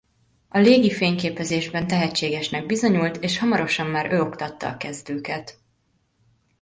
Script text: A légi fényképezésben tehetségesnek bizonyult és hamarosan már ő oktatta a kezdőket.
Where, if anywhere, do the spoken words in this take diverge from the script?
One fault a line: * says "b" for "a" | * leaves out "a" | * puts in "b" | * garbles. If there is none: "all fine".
all fine